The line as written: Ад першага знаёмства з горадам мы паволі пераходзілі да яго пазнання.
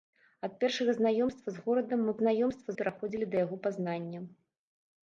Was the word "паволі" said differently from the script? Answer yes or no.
yes